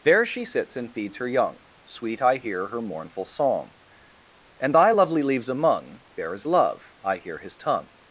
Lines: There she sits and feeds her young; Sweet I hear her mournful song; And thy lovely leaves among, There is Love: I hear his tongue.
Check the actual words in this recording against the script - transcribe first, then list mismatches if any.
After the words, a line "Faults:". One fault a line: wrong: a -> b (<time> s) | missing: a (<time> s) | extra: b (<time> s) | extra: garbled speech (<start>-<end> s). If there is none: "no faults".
There she sits and feeds her young; Sweet I hear her mournful song; And thy lovely leaves among, There is Love: I hear his tongue.
Faults:
no faults